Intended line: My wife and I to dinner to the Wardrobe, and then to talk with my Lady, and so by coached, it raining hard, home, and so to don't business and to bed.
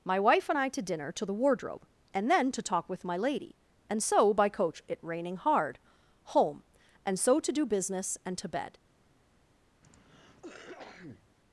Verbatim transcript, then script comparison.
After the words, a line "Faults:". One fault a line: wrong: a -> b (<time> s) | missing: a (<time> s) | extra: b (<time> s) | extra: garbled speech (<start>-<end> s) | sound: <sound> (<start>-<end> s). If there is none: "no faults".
My wife and I to dinner to the Wardrobe, and then to talk with my Lady, and so by coach, it raining hard, home, and so to do business and to bed.
Faults:
wrong: coached -> coach (4.5 s)
wrong: don't -> do (7.5 s)
sound: cough (9.8-11.3 s)